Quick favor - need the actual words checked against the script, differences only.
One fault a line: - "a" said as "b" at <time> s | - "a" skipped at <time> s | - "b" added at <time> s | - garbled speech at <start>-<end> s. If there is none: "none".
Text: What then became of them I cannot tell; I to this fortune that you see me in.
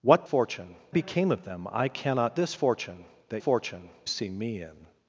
- "then" said as "fortune" at 0.2 s
- "tell I to" skipped at 2.4 s
- "you" said as "fortune" at 3.4 s